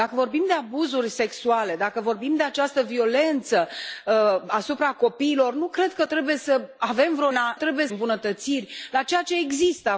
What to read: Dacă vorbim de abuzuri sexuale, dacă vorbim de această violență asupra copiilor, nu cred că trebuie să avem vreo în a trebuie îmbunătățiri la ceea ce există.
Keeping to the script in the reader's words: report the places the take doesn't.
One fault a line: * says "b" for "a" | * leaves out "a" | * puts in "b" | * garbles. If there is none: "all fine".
all fine